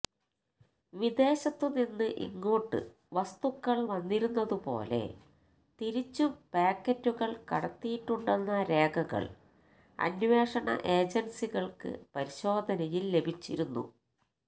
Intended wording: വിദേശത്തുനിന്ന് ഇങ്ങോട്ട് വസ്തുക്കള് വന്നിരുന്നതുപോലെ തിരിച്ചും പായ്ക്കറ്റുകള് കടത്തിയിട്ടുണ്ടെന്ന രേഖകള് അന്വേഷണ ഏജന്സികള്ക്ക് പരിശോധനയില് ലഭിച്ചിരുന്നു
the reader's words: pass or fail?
pass